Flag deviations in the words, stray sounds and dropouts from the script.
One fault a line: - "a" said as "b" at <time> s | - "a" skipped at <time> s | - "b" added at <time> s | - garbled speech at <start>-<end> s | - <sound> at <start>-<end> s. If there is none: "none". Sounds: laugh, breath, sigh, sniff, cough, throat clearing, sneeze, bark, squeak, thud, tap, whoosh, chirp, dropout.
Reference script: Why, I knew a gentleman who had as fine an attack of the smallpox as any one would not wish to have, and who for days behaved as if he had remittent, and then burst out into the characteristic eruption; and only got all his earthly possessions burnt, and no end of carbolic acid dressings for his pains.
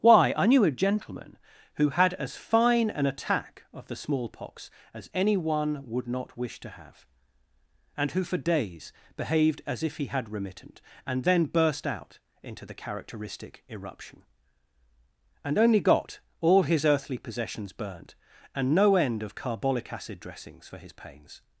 none